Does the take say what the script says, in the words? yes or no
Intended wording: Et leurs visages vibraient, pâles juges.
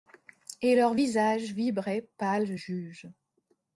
yes